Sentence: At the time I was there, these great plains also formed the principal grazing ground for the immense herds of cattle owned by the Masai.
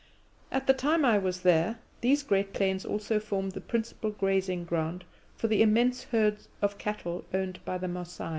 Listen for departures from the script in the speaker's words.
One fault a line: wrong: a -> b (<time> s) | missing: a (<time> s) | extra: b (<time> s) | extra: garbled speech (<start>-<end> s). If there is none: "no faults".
no faults